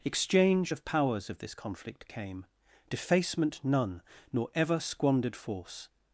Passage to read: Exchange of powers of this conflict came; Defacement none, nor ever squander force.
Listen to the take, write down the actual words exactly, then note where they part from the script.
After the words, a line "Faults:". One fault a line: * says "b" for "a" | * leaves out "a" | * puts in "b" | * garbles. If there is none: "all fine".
Exchange of powers of this conflict came; Defacement none, nor ever squandered force.
Faults:
* says "squandered" for "squander"